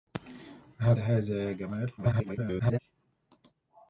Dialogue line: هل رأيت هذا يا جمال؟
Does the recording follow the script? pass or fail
fail